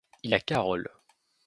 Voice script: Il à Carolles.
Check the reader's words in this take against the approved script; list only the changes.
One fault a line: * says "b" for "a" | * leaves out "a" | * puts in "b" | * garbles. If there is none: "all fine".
all fine